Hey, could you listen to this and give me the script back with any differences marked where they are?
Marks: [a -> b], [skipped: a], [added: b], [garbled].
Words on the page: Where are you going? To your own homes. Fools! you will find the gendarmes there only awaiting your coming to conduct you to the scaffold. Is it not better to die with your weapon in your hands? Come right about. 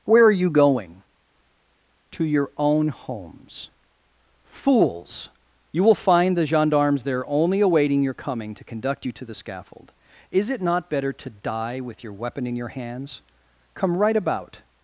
Where are you going? To your own homes. Fools! you will find the gendarmes there only awaiting your coming to conduct you to the scaffold. Is it not better to die with your weapon in your hands? Come right about.